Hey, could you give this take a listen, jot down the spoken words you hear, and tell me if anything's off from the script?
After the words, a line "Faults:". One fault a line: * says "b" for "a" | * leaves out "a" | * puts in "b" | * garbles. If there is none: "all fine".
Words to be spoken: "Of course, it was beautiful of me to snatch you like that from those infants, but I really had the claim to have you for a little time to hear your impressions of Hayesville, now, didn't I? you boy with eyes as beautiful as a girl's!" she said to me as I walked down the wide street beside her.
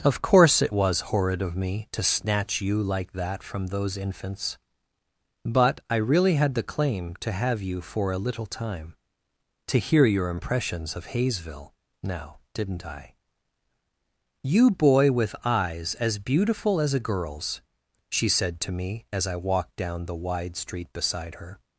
"Of course, it was horrid of me to snatch you like that from those infants, but I really had the claim to have you for a little time to hear your impressions of Hayesville, now, didn't I? you boy with eyes as beautiful as a girl's!" she said to me as I walked down the wide street beside her.
Faults:
* says "horrid" for "beautiful"